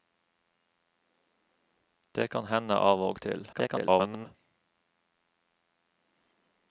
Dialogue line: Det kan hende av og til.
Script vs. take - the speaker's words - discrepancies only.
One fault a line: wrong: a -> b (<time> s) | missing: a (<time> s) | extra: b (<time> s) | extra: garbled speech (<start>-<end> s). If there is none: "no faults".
extra: garbled speech (3.5-4.3 s)